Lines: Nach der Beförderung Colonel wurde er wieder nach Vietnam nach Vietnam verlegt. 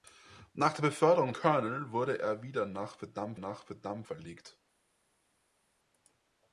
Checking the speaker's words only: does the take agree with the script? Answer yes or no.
yes